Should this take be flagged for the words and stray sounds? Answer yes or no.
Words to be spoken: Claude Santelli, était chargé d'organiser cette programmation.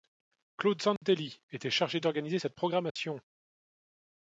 yes